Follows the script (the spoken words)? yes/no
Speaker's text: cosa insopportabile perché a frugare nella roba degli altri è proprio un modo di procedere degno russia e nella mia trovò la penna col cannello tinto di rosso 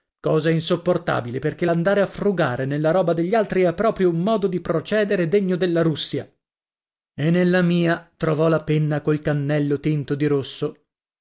no